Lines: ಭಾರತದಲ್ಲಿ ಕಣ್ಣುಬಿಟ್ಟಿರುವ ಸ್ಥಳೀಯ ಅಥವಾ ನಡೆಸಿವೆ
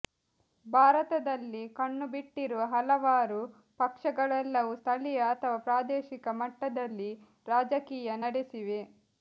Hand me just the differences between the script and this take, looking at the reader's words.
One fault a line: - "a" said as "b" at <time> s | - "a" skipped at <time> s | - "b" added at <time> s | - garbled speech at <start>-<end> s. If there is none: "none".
- "ಹಲವಾರು ಪಕ್ಷಗಳೆಲ್ಲವೂ" added at 2.7 s
- "ಪ್ರಾದೇಶಿಕ ಮಟ್ಟದಲ್ಲಿ ರಾಜಕೀಯ" added at 5.7 s